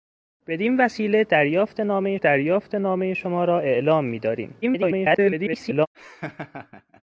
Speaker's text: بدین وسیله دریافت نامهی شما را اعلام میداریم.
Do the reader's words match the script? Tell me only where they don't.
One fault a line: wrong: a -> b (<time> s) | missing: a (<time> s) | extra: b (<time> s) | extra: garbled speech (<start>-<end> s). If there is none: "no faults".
extra: دریافت نامهی (2.2 s)
extra: garbled speech (4.6-5.9 s)